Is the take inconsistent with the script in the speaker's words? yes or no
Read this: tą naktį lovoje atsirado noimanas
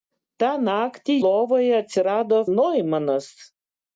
no